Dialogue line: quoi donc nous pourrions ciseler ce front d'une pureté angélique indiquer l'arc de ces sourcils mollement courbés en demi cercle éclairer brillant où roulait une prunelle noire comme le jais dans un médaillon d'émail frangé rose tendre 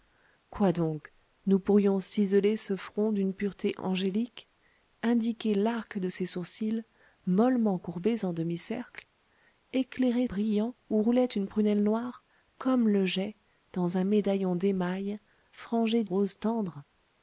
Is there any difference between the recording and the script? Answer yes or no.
no